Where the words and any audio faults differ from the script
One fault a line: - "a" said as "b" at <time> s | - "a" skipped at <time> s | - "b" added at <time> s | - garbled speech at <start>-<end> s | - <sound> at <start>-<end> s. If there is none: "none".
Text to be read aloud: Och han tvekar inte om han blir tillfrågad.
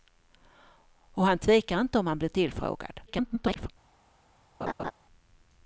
- garbled speech at 3.1-3.7 s
- laugh at 4.6-4.9 s